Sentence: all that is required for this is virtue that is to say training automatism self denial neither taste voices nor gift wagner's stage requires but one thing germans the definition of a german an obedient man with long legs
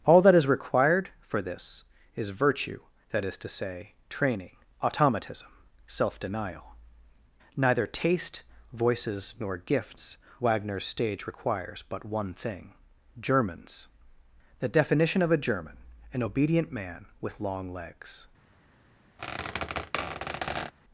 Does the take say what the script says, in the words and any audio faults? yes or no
no